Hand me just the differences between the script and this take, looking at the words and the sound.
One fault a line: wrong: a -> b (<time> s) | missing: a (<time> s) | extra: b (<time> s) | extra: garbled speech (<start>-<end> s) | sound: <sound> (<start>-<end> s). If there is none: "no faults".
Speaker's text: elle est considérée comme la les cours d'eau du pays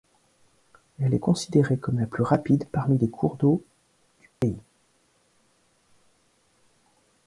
extra: plus rapide parmi (2.1 s)
sound: dropout (4.4-4.4 s)